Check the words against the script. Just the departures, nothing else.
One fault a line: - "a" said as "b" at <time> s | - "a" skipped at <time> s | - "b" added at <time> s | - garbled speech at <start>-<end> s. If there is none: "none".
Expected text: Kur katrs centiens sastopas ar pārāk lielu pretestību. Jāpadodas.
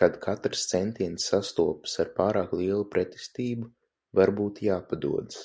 - "Kur" said as "Kad" at 0.0 s
- "Varbūt" added at 4.1 s